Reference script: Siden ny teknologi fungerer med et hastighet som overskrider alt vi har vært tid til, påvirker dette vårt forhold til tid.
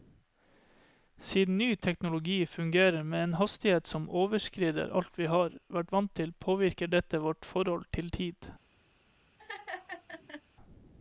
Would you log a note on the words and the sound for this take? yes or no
yes